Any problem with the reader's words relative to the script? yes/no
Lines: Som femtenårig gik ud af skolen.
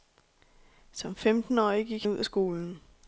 no